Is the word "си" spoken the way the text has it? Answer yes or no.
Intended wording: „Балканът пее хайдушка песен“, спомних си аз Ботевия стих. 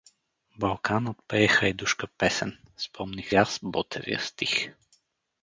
no